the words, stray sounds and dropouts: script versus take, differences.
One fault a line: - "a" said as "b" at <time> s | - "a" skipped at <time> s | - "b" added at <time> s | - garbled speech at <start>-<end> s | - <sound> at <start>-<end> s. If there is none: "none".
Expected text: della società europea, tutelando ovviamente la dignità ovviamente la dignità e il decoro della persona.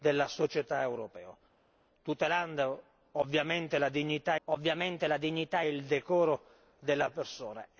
none